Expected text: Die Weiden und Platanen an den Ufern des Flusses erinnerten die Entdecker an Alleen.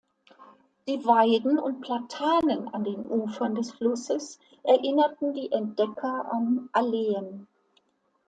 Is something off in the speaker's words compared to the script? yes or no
no